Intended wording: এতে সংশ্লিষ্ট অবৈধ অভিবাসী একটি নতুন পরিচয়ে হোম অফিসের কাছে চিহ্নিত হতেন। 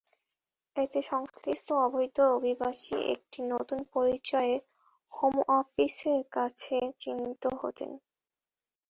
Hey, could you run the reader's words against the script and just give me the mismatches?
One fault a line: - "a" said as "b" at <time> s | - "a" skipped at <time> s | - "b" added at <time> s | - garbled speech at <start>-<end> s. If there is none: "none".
none